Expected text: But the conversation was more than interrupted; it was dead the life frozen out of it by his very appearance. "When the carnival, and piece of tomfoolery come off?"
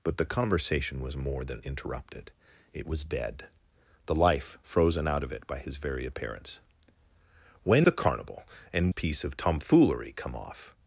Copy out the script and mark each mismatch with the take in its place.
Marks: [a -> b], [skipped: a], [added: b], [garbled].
But the conversation was more than interrupted; it was dead the life frozen out of it by his very appearance. "When the carnival, and piece of tomfoolery come off?"